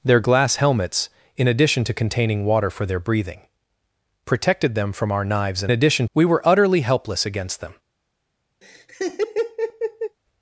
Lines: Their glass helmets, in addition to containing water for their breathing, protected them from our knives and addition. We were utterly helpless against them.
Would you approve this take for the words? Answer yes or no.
yes